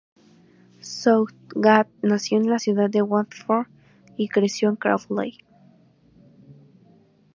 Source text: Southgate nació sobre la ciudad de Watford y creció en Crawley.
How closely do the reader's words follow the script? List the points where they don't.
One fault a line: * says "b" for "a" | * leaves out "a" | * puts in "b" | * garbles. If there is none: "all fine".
* says "en" for "sobre"